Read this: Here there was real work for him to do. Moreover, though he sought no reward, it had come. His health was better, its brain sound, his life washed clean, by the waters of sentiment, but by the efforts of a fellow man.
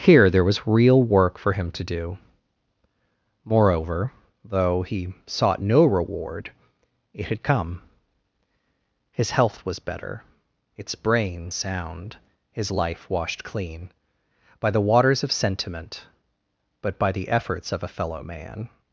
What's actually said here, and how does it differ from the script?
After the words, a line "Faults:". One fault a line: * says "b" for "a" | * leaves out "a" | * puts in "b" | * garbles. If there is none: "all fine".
Here there was real work for him to do. Moreover, though he sought no reward, it had come. His health was better, its brain sound, his life washed clean, by the waters of sentiment, but by the efforts of a fellow man.
Faults:
all fine